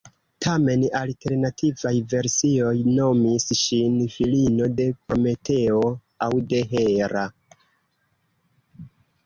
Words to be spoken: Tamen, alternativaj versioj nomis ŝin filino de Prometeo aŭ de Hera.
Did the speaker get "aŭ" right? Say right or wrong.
right